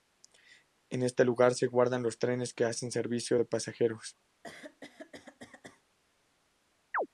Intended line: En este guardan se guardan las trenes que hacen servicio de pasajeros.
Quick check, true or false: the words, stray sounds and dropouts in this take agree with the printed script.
false